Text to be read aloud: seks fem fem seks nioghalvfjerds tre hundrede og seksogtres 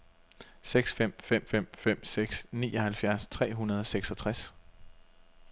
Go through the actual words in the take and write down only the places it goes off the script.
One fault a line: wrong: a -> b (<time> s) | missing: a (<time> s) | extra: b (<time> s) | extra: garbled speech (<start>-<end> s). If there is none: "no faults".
extra: fem fem (1.4 s)